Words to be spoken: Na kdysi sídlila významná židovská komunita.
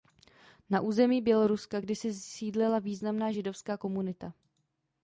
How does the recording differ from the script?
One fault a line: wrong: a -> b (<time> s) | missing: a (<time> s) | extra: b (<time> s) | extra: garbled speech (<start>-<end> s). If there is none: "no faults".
extra: území Běloruska (0.8 s)